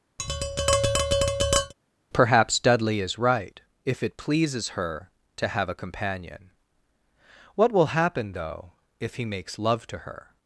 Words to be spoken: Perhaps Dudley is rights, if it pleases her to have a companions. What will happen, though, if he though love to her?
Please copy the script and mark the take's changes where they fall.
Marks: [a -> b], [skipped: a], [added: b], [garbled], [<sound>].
[tap] Perhaps Dudley is [rights, -> right] if it pleases her to have a [companions. -> companion] What will happen, though, if he [though -> makes] love to her?